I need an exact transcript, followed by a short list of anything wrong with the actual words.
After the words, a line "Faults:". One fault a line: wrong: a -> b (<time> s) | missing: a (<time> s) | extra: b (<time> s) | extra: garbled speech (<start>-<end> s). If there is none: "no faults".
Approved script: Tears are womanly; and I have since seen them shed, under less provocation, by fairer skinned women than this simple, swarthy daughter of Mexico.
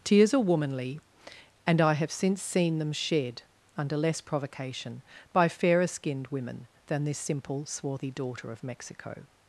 Tears are womanly; and I have since seen them shed, under less provocation, by fairer skinned women than this simple, swarthy daughter of Mexico.
Faults:
no faults